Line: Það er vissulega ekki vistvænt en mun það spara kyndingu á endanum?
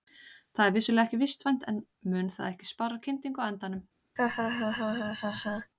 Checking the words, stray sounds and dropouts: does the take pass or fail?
fail